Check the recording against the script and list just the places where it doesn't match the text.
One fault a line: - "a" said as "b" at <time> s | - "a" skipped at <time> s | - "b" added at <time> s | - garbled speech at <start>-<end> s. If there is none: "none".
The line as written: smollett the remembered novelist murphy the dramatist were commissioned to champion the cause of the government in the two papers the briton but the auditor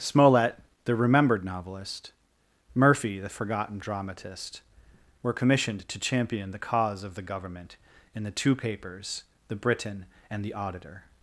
- "forgotten" added at 3.3 s
- "but" said as "and" at 10.3 s